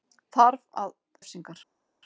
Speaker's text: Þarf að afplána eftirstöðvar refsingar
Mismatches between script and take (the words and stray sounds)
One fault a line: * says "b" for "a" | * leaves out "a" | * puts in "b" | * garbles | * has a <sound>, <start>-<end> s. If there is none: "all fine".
* leaves out "afplána eftirstöðvar"